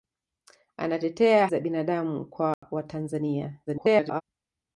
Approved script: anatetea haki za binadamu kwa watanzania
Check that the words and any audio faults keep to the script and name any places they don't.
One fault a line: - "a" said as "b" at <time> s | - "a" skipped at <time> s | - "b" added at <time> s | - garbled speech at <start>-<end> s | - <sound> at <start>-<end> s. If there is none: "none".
- "haki" skipped at 1.5 s
- dropout at 2.5-2.6 s
- garbled speech at 3.7-4.2 s